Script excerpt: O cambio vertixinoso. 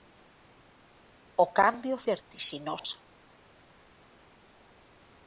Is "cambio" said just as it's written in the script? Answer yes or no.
yes